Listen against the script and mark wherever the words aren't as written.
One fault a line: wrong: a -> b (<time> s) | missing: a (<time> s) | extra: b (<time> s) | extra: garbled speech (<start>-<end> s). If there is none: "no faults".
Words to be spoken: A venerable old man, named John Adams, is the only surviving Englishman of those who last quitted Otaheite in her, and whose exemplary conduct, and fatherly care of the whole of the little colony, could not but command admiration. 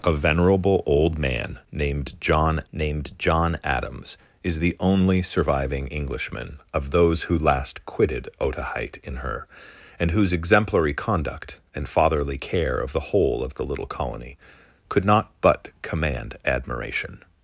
extra: named John (2.7 s)